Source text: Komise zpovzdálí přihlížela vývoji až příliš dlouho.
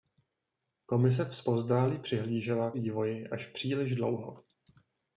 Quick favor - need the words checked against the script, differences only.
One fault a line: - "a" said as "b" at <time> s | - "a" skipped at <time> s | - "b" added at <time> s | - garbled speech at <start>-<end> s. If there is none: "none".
none